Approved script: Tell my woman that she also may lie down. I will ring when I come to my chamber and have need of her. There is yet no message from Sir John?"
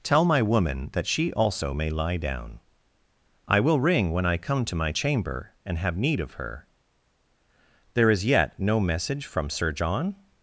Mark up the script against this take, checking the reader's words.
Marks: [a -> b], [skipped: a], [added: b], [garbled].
Tell my woman that she also may lie down. I will ring when I come to my chamber and have need of her. There is yet no message from Sir John?"